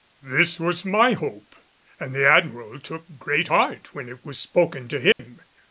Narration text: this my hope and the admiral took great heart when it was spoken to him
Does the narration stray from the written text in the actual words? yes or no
yes